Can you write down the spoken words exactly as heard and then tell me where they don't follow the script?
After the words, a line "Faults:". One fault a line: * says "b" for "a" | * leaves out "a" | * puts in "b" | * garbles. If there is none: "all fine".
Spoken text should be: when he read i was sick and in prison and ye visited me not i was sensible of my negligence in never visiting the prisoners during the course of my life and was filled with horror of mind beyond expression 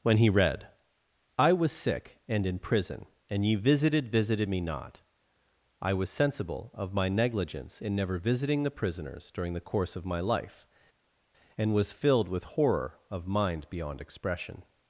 when he read i was sick and in prison and ye visited visited me not i was sensible of my negligence in never visiting the prisoners during the course of my life and was filled with horror of mind beyond expression
Faults:
* puts in "visited"